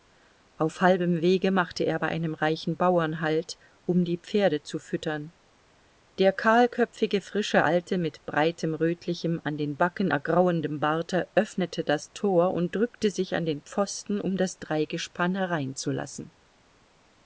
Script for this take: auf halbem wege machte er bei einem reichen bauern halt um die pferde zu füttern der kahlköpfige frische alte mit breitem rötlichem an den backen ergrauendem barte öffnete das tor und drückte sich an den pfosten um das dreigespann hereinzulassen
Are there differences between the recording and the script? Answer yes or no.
no